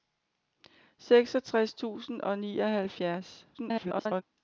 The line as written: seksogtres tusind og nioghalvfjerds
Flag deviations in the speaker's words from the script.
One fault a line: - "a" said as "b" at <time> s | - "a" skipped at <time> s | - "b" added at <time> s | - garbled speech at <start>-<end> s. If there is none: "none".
- garbled speech at 3.5-4.2 s